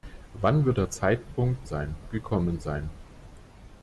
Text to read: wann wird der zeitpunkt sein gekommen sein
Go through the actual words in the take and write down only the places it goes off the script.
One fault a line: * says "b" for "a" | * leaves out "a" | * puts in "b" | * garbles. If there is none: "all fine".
all fine